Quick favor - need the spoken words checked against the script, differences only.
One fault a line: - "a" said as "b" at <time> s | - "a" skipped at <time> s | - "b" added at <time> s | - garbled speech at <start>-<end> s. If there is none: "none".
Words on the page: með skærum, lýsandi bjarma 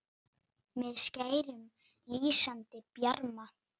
none